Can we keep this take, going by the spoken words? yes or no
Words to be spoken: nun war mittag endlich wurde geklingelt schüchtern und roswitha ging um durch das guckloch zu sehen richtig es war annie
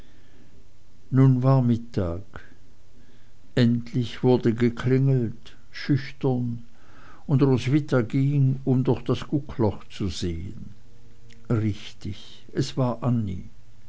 yes